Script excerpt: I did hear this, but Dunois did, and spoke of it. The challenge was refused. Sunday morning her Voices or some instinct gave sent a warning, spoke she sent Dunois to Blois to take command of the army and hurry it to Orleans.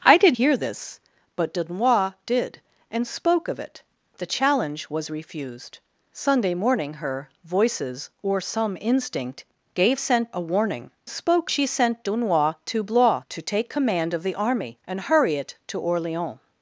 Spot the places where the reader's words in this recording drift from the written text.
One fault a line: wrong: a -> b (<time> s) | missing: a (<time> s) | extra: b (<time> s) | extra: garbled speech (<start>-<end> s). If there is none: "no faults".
no faults